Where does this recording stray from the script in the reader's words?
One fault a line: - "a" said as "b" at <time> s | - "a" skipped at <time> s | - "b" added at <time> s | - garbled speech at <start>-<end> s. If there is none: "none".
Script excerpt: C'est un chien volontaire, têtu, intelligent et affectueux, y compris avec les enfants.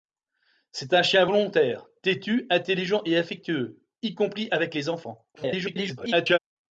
- garbled speech at 5.3-6.4 s